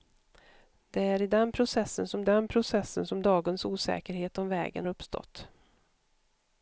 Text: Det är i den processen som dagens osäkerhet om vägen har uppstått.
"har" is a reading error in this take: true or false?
true